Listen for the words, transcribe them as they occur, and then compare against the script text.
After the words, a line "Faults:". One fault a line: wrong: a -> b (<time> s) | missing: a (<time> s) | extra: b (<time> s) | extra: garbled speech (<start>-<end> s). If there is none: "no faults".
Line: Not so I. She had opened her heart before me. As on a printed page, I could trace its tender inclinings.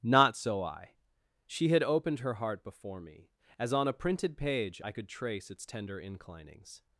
Not so I. She had opened her heart before me. As on a printed page, I could trace its tender inclinings.
Faults:
no faults